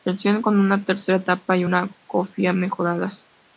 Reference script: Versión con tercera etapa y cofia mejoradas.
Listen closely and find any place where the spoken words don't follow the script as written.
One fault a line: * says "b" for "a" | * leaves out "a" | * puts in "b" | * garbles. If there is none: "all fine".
* puts in "una"
* puts in "una"